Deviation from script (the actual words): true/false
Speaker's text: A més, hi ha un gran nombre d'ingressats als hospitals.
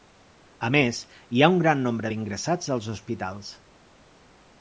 false